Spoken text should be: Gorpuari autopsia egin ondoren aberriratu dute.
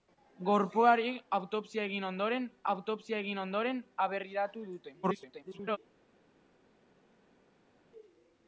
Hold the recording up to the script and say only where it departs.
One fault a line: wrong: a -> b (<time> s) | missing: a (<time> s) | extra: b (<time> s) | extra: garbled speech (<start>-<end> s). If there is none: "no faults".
extra: autopsia egin ondoren (2.7 s)
extra: garbled speech (5.0-5.8 s)